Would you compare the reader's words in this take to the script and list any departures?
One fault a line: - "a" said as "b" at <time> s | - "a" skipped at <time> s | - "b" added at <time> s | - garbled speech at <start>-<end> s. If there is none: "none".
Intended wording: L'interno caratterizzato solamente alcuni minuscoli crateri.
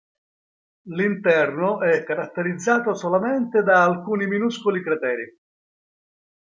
- "è" added at 1.8 s
- "da" added at 3.6 s